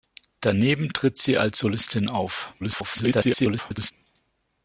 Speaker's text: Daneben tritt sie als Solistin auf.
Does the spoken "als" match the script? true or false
true